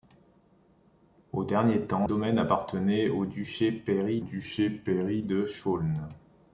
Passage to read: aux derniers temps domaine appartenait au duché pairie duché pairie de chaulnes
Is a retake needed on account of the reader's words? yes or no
no